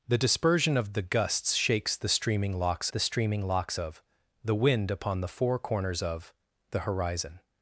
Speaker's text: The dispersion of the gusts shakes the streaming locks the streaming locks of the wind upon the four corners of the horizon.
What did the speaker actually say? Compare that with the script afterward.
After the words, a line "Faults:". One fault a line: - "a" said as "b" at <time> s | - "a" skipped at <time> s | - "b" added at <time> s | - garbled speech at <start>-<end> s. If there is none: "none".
The dispersion of the gusts shakes the streaming locks the streaming locks of the wind upon the four corners of the horizon.
Faults:
none